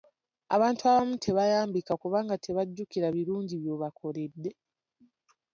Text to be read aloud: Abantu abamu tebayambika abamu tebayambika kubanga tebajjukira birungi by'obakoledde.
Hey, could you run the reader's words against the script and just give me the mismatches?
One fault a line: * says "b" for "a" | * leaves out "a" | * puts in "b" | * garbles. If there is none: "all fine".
* leaves out "abamu tebayambika"